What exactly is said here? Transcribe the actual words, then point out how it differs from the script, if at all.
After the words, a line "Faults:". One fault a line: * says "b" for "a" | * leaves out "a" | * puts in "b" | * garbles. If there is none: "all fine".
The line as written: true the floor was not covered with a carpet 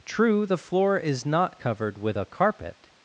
true the floor is not covered with a carpet
Faults:
* says "is" for "was"